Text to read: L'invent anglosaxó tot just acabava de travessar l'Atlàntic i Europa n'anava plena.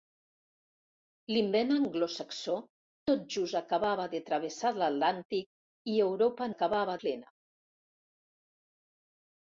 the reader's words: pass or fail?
fail